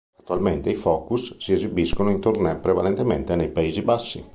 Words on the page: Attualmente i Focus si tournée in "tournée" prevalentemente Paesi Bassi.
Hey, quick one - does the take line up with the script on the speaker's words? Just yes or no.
no